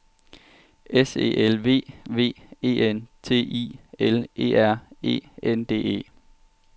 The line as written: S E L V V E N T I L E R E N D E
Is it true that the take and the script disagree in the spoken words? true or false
false